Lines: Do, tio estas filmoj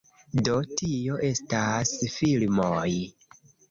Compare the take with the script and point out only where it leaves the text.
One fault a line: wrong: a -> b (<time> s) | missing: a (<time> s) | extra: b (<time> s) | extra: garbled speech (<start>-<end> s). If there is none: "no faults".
no faults